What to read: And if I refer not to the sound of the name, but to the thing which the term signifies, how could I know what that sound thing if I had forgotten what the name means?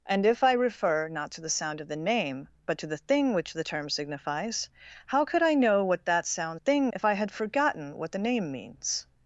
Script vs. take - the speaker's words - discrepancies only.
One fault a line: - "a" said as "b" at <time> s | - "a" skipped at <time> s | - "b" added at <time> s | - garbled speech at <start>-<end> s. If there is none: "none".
none